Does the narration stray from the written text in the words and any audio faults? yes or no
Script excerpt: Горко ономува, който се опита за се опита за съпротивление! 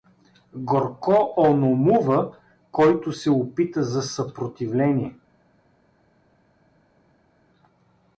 yes